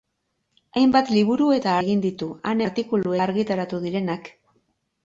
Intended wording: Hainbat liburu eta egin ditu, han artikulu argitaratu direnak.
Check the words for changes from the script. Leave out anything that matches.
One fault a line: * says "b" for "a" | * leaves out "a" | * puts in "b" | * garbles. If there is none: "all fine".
all fine